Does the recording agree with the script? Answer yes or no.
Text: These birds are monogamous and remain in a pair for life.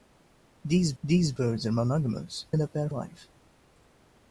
no